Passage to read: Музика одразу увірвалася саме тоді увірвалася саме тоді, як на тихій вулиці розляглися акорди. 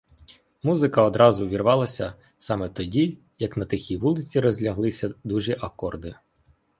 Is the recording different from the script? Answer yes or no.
yes